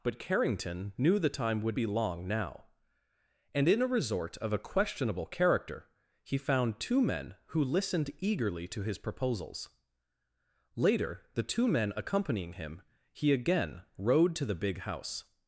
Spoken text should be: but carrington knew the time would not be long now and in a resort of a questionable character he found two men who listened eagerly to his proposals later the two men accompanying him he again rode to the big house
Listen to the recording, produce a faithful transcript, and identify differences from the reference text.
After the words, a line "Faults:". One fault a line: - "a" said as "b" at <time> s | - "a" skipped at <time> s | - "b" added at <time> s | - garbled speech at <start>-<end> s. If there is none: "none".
but carrington knew the time would be long now and in a resort of a questionable character he found two men who listened eagerly to his proposals later the two men accompanying him he again rode to the big house
Faults:
- "not" skipped at 1.8 s